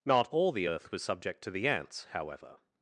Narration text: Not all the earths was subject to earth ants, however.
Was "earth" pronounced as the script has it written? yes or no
no